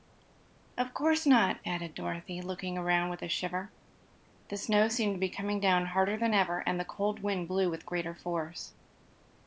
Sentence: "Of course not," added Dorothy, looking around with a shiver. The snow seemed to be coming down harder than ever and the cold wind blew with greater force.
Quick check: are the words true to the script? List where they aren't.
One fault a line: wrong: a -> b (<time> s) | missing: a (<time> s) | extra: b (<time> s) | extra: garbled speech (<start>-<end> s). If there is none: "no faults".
no faults